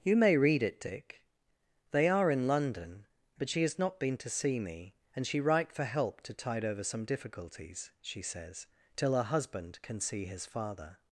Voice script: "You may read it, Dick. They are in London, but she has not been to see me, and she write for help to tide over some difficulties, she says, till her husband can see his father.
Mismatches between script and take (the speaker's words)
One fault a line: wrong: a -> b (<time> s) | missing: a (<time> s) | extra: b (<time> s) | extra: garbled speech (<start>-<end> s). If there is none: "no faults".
no faults